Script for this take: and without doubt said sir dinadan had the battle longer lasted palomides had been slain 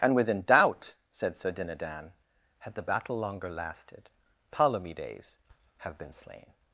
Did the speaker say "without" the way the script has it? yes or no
no